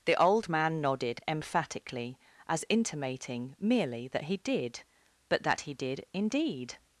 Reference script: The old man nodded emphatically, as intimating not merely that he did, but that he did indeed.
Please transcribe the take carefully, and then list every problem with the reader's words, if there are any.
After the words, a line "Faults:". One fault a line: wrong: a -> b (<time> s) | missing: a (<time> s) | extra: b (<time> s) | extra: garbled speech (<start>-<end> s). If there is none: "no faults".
The old man nodded emphatically, as intimating merely that he did, but that he did indeed.
Faults:
missing: not (3.5 s)